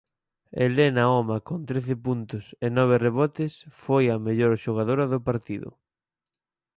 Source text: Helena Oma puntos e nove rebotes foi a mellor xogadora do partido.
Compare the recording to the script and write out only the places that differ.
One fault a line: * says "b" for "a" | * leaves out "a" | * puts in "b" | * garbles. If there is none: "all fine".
* puts in "con trece"